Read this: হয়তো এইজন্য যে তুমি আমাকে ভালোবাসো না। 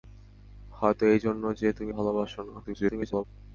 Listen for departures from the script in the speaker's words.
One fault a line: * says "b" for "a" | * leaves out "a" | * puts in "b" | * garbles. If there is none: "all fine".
* leaves out "আমাকে"
* garbles